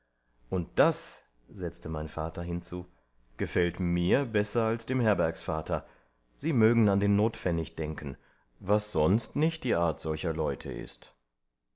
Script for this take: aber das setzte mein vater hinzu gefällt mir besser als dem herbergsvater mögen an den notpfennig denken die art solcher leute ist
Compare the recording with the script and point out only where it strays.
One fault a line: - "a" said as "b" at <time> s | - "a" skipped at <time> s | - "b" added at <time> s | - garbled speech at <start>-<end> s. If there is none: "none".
- "aber" said as "und" at 0.5 s
- "sie" added at 6.4 s
- "was sonst nicht" added at 8.6 s